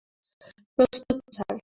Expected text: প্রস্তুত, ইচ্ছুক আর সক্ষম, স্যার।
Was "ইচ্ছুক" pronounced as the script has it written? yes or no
no